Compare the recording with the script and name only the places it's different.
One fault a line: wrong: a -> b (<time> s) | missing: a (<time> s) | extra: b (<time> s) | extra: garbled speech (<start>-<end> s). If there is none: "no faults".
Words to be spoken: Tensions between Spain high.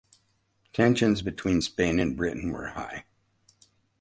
extra: and Britain were (2.0 s)